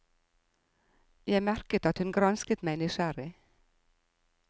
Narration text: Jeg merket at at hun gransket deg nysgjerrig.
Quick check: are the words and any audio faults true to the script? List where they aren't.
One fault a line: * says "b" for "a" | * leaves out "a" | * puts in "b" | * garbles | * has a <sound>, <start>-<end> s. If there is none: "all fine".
* leaves out "at"
* says "meg" for "deg"